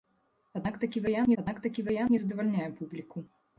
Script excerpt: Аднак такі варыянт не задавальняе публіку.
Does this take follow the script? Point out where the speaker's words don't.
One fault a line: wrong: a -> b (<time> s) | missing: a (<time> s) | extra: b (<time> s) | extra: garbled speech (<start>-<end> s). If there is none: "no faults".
extra: аднак такі варыянт (1.4 s)